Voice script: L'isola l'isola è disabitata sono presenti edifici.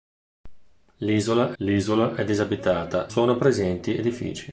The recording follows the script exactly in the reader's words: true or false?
true